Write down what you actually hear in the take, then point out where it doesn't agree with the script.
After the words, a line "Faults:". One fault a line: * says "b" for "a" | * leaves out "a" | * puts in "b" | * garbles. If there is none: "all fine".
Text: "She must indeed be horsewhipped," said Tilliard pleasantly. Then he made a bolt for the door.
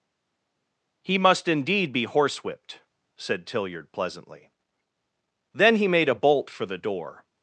"He must indeed be horsewhipped," said Tilliard pleasantly. Then he made a bolt for the door.
Faults:
* says "He" for "She"